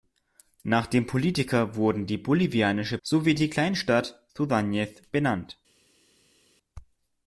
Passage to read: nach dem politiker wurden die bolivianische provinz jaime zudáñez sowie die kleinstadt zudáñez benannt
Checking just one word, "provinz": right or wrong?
wrong